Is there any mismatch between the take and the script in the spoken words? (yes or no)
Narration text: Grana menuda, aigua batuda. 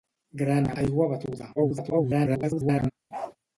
yes